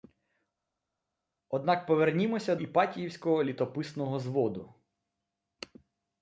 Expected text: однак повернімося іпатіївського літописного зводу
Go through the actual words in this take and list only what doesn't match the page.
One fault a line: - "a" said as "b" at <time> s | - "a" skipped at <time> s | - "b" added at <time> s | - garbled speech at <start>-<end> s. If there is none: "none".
none